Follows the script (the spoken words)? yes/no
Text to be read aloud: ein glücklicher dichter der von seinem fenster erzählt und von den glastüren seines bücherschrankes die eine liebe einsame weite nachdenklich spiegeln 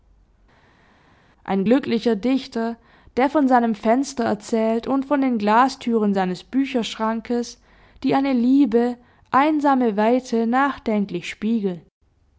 yes